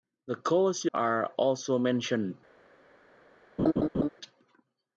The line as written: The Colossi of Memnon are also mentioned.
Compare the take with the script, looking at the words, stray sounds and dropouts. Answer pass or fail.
fail